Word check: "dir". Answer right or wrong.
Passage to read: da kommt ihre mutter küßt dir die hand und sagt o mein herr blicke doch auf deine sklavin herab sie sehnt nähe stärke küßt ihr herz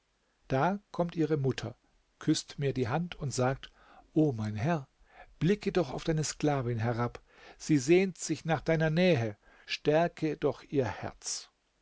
wrong